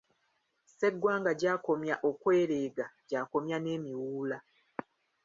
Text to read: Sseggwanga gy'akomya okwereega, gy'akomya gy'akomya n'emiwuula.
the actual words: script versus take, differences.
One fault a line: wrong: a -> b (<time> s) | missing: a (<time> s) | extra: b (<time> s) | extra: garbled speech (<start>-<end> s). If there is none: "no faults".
missing: gy'akomya (3.6 s)